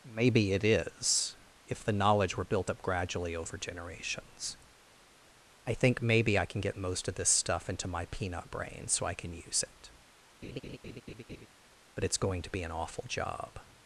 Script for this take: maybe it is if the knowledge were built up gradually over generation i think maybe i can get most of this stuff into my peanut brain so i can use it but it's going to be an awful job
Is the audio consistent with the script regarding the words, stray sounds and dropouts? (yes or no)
no